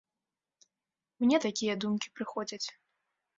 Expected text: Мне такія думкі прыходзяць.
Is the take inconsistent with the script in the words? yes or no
no